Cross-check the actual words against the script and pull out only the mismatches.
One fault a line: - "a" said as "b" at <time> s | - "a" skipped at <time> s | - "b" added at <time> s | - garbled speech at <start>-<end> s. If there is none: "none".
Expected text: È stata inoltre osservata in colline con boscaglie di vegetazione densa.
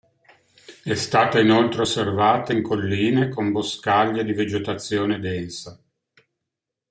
none